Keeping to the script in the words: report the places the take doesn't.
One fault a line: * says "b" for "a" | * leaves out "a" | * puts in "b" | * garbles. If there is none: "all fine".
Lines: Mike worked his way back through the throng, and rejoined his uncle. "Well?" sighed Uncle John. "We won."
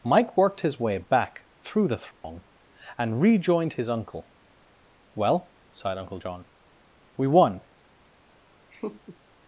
all fine